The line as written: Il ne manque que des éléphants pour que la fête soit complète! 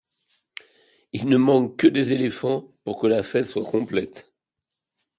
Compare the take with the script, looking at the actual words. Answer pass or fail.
pass